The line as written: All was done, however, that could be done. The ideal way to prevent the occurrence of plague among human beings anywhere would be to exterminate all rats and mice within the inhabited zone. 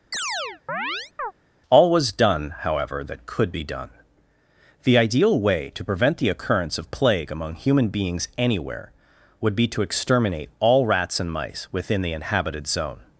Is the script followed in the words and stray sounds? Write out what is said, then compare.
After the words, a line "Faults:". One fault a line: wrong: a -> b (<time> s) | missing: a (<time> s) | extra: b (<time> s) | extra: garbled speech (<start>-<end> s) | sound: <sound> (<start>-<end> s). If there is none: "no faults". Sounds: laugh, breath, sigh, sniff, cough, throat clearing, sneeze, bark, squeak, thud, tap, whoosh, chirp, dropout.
All was done, however, that could be done. The ideal way to prevent the occurrence of plague among human beings anywhere would be to exterminate all rats and mice within the inhabited zone.
Faults:
sound: chirp (0.1-1.3 s)